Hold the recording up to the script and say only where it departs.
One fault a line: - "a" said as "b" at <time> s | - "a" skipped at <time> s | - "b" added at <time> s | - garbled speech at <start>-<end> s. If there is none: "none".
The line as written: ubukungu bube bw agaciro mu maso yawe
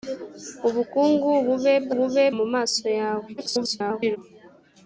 - "agaciro" said as "bube" at 2.0 s
- garbled speech at 3.4-4.2 s